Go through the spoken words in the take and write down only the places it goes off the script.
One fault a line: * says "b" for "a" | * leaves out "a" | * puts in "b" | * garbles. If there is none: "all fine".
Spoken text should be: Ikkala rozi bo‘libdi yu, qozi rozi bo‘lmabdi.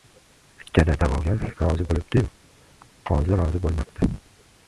* puts in "da'vogar"